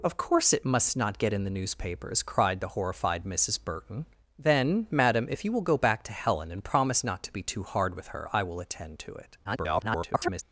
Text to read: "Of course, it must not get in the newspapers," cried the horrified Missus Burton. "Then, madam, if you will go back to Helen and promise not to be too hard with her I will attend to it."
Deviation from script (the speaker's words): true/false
true